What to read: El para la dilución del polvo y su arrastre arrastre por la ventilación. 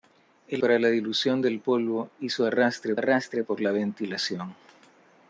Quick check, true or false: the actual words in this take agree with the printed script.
true